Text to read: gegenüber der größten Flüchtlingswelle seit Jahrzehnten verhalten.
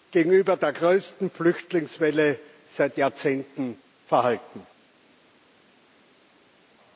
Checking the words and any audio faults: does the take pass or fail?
pass